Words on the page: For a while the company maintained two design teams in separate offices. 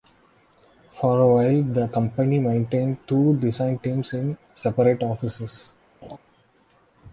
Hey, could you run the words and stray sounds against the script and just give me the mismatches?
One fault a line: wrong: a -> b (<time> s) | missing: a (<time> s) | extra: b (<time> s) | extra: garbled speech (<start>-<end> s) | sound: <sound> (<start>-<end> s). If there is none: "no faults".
sound: laugh (6.0-6.2 s)